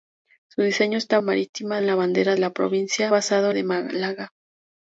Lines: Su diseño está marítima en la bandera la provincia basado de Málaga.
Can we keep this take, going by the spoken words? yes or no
yes